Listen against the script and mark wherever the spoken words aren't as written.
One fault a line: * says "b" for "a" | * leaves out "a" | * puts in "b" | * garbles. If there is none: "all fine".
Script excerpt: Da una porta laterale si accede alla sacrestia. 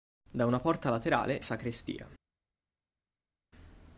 * leaves out "si accede alla"